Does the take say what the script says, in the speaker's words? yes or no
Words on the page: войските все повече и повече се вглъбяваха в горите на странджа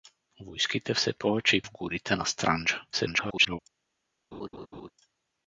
no